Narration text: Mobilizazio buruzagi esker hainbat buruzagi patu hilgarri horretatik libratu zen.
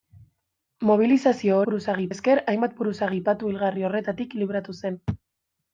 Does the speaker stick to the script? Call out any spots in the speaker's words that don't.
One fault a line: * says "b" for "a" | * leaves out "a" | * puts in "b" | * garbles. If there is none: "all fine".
all fine